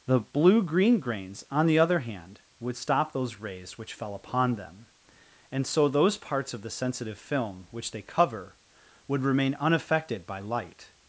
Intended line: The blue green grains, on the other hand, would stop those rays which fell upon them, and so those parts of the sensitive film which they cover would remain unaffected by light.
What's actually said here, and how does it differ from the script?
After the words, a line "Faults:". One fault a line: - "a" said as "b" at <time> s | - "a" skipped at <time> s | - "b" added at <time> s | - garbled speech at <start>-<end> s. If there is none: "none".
The blue green grains, on the other hand, would stop those rays which fell upon them, and so those parts of the sensitive film which they cover would remain unaffected by light.
Faults:
none